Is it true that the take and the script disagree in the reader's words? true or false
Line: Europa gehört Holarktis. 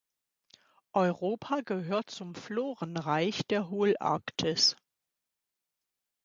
true